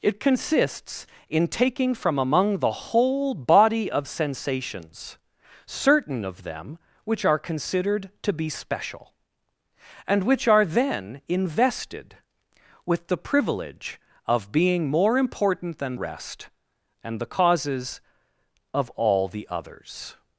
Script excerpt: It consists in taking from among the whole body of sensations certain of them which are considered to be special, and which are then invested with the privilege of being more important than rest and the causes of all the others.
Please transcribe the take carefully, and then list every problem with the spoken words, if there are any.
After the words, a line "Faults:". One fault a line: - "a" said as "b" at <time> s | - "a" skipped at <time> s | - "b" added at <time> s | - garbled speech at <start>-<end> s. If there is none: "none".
It consists in taking from among the whole body of sensations certain of them which are considered to be special, and which are then invested with the privilege of being more important than rest and the causes of all the others.
Faults:
none